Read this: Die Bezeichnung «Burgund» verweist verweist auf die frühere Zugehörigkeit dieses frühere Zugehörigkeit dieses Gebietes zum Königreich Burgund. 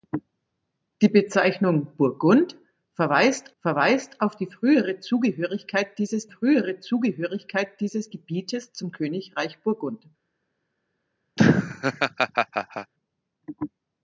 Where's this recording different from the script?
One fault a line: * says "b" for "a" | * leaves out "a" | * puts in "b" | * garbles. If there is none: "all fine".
all fine